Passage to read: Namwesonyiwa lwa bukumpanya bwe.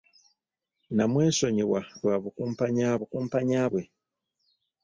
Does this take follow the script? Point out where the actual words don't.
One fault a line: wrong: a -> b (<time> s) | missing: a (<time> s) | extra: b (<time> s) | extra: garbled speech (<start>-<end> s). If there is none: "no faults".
extra: bukumpanya (3.0 s)